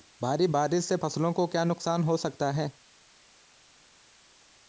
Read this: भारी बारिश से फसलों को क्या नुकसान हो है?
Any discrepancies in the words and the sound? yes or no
yes